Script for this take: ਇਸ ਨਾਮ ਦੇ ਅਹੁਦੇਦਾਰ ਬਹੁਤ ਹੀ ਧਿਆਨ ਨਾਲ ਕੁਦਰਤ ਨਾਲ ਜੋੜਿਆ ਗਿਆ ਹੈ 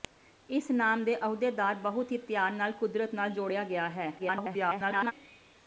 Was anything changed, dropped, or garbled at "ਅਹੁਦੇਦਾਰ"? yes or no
no